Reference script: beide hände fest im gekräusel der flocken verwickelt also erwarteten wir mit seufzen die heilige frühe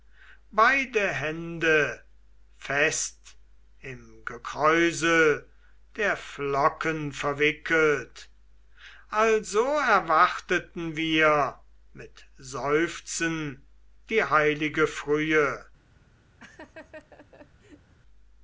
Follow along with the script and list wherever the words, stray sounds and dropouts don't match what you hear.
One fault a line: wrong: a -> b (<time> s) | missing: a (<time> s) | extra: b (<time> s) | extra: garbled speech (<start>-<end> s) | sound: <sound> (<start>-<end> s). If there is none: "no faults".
sound: laugh (16.4-17.9 s)